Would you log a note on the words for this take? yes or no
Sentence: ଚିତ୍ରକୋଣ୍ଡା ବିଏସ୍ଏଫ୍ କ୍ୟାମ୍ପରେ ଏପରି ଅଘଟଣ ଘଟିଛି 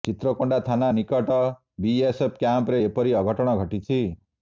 yes